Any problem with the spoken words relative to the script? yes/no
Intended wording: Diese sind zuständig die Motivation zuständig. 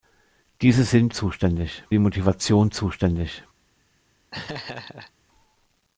no